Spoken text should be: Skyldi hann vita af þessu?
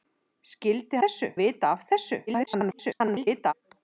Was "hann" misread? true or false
true